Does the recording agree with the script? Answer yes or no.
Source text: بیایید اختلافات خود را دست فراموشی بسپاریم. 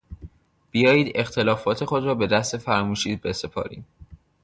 no